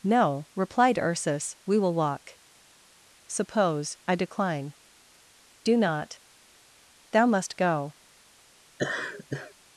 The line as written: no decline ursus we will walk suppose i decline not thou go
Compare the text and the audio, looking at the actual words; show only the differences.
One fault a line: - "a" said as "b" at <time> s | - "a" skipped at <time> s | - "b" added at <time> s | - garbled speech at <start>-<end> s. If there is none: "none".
- "decline" said as "replied" at 0.6 s
- "do" added at 5.6 s
- "must" added at 7.3 s